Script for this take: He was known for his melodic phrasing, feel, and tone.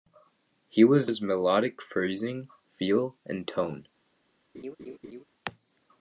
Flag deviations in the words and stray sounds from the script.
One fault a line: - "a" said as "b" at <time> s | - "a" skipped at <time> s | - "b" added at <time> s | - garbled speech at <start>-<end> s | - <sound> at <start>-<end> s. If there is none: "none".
- "known for" skipped at 1.1 s
- laugh at 4.5-5.2 s